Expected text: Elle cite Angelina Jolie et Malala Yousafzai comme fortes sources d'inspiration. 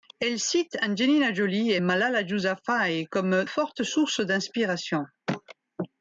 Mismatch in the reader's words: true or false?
false